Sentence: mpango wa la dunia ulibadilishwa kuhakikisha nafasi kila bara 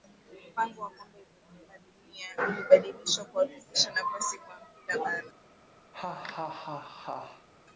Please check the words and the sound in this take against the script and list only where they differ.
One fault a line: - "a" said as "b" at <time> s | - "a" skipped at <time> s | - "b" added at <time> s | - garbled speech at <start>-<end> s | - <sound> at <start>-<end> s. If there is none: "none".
- "kombe" added at 0.9 s
- "kwa" added at 4.4 s
- laugh at 5.9-7.5 s